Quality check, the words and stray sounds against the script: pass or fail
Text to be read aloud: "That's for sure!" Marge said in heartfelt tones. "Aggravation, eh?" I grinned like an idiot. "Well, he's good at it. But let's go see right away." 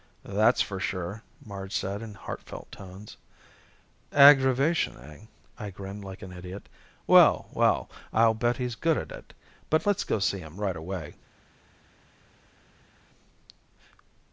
fail